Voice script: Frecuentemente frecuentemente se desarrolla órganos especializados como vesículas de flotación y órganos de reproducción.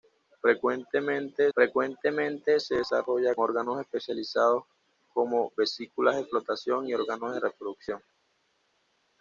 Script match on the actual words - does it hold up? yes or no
yes